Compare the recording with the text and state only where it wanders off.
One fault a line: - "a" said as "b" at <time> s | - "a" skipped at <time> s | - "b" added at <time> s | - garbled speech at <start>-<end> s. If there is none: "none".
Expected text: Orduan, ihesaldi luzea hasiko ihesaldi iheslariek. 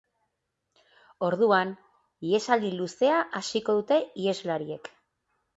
- "ihesaldi" said as "dute" at 3.8 s